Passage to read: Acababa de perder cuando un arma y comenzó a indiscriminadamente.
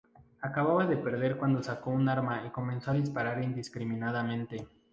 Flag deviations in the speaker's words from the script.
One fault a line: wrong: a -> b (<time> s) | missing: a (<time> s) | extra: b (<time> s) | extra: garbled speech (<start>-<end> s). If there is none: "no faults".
extra: sacó (1.6 s)
extra: disparar (2.9 s)